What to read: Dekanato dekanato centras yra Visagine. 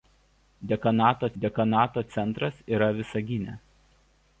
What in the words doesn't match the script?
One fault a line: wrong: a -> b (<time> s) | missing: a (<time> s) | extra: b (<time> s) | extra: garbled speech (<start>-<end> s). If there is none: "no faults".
no faults